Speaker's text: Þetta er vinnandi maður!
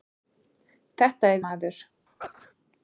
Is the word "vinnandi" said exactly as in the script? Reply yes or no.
no